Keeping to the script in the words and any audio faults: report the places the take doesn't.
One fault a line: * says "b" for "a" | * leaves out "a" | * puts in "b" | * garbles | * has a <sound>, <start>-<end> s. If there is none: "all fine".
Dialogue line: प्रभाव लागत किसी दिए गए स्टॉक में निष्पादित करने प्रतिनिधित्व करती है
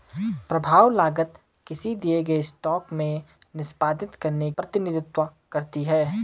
all fine